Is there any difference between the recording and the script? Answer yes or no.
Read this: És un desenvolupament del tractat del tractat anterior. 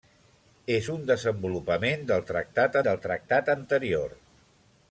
no